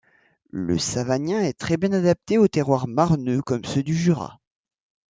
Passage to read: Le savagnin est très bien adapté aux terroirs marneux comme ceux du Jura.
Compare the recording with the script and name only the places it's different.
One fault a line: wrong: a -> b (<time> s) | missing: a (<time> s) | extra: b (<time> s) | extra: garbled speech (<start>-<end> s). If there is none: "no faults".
no faults